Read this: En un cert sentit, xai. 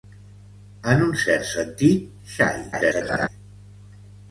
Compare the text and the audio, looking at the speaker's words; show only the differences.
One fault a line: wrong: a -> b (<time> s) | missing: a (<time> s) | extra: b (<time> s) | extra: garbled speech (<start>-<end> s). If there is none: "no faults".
extra: garbled speech (2.7-3.3 s)